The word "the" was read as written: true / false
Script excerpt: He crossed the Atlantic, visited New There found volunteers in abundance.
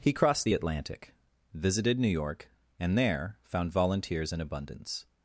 true